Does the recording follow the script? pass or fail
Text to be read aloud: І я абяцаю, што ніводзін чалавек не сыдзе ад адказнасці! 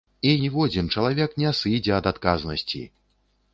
fail